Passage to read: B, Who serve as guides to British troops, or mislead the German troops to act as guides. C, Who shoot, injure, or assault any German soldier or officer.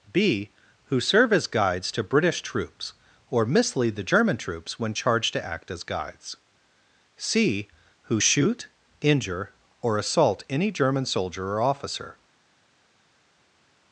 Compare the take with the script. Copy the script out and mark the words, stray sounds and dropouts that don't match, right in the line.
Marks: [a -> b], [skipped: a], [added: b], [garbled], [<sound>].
B, Who serve as guides to British troops, or mislead the German troops [added: when charged] to act as guides. C, Who shoot, injure, or assault any German soldier or officer.